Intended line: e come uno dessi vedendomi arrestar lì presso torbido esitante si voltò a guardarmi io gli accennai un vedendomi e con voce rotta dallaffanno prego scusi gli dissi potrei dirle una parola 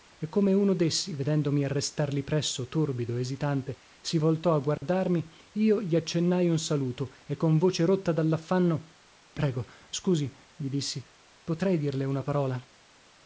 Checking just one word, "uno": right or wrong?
right